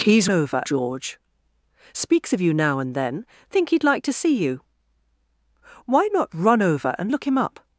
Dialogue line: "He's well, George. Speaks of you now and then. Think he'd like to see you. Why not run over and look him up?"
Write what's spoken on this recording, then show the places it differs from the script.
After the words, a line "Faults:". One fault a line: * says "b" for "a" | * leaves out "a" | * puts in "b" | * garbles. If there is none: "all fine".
"He's over, George. Speaks of you now and then. Think he'd like to see you. Why not run over and look him up?"
Faults:
* says "over" for "well"